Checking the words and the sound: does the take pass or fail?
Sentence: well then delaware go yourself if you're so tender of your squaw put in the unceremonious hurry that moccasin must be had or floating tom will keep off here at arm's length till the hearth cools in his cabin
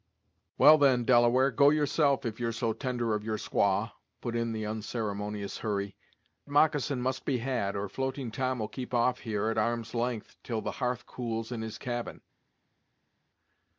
fail